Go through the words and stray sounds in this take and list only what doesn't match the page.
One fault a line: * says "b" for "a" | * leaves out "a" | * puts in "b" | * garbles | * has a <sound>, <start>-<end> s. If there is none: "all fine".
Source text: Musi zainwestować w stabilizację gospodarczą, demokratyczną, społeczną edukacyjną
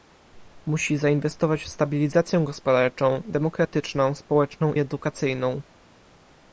all fine